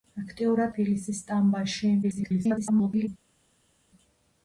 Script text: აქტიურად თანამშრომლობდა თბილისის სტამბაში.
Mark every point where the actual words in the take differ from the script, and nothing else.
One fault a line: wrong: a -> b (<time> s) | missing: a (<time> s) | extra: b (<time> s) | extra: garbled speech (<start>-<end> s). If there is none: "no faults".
missing: თანამშრომლობდა (0.7 s)
extra: garbled speech (2.0-3.1 s)